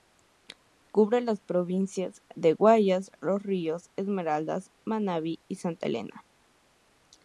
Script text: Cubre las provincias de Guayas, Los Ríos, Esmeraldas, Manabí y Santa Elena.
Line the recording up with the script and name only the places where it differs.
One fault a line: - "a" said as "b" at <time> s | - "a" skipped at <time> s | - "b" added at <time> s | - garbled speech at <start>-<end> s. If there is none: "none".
none